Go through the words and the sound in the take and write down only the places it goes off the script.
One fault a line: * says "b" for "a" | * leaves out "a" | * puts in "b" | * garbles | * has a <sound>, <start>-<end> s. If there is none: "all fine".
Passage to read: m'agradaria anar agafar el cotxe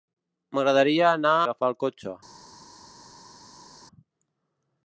all fine